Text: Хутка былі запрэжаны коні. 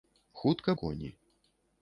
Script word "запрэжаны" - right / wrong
wrong